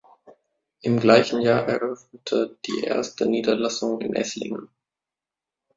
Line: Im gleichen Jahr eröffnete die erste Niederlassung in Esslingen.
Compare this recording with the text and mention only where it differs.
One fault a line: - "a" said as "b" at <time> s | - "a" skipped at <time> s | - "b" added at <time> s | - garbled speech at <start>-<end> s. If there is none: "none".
none